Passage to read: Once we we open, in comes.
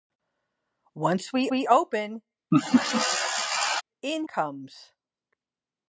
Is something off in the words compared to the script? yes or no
no